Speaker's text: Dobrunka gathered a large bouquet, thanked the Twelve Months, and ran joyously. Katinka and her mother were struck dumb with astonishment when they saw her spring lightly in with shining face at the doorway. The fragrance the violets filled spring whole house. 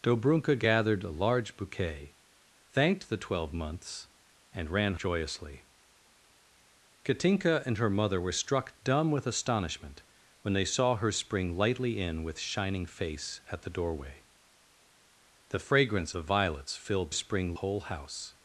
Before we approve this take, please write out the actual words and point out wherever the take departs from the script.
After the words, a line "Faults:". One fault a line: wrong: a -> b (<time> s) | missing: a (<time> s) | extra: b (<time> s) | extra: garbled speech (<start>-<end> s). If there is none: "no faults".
Dobrunka gathered a large bouquet, thanked the Twelve Months, and ran joyously. Katinka and her mother were struck dumb with astonishment when they saw her spring lightly in with shining face at the doorway. The fragrance the violets filled spring whole house.
Faults:
no faults